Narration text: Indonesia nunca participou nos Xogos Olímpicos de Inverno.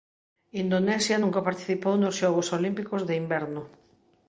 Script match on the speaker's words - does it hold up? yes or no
yes